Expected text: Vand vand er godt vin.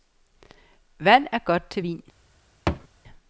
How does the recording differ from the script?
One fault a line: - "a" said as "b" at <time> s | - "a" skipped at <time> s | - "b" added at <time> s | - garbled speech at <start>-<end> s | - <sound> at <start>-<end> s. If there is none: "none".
- "vand" skipped at 1.3 s
- "til" added at 1.7 s
- thud at 2.7-2.9 s